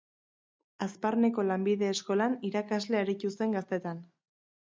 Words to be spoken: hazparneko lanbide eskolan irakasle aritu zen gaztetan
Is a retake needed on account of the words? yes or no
no